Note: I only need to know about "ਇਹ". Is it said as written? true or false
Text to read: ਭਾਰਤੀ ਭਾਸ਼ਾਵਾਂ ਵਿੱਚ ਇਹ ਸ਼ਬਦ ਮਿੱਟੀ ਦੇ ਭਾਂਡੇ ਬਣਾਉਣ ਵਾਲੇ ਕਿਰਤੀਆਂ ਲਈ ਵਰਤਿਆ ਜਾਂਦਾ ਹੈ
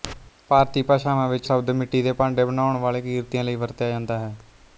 false